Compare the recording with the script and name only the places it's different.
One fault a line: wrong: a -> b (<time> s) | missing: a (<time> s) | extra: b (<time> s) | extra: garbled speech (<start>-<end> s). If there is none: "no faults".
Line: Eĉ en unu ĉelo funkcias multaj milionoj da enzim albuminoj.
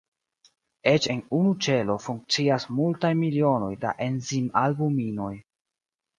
no faults